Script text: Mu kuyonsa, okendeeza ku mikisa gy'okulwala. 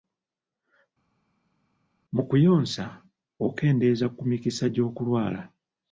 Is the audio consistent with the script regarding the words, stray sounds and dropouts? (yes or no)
yes